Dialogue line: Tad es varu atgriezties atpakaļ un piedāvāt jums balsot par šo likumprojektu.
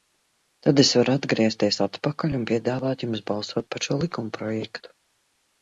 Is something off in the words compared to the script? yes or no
no